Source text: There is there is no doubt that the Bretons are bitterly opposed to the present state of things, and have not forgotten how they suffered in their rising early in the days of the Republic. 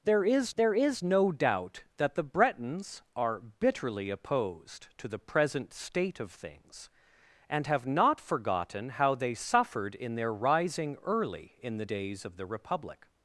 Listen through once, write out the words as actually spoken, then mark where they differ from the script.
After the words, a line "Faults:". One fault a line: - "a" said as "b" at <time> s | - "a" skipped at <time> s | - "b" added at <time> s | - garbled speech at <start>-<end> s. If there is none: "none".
There is there is no doubt that the Bretons are bitterly opposed to the present state of things, and have not forgotten how they suffered in their rising early in the days of the Republic.
Faults:
none